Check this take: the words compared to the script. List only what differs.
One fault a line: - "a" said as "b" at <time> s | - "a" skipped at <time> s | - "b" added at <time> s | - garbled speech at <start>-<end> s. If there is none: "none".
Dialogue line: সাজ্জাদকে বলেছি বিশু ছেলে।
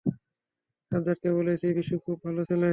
- "খুব ভালো" added at 2.0 s